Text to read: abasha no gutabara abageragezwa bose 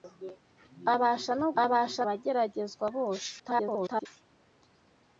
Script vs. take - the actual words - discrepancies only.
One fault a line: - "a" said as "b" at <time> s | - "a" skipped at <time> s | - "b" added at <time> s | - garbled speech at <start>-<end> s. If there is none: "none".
- "gutabara" said as "abasha" at 1.6 s
- garbled speech at 3.4-4.1 s